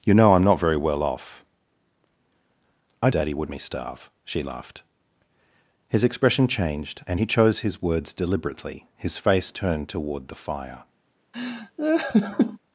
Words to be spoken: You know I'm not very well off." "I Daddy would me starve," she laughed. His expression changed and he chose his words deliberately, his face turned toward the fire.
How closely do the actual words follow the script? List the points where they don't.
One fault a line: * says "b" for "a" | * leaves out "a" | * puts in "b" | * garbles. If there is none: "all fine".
all fine